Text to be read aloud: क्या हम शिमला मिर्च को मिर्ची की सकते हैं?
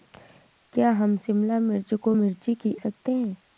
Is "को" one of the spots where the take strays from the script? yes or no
no